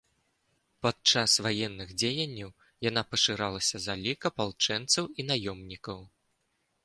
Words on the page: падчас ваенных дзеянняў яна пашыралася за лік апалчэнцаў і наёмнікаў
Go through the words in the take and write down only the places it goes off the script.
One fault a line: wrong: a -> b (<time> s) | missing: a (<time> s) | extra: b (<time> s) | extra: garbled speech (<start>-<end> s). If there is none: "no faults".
no faults